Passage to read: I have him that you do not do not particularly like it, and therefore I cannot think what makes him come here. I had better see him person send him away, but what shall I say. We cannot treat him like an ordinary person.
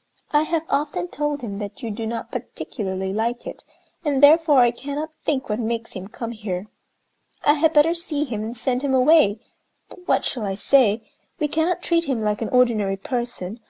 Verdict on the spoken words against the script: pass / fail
fail